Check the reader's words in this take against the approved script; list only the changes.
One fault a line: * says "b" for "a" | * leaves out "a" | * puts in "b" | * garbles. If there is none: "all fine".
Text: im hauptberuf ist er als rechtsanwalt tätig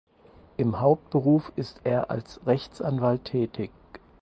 all fine